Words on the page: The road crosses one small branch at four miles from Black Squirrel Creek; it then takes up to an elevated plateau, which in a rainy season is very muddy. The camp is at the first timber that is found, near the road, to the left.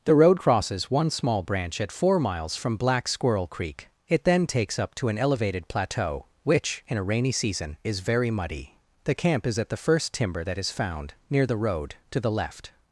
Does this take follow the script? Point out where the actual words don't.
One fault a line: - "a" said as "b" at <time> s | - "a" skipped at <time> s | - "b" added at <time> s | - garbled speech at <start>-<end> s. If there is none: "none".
none